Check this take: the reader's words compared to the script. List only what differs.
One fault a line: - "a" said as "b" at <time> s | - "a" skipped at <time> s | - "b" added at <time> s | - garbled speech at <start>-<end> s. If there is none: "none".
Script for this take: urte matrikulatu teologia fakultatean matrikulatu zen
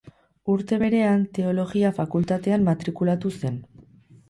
- "matrikulatu" said as "berean" at 0.8 s